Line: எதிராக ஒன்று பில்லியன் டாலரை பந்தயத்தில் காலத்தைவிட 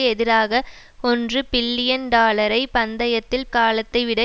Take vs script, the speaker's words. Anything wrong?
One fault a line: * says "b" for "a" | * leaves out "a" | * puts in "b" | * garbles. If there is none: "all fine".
all fine